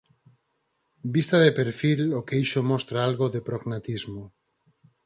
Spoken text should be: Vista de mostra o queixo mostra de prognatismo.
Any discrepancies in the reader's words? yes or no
yes